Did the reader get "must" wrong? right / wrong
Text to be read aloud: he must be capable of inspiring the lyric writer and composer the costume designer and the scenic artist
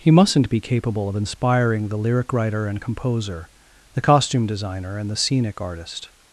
wrong